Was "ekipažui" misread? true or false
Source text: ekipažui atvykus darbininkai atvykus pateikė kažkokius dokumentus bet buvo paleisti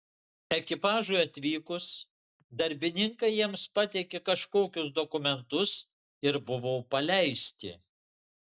false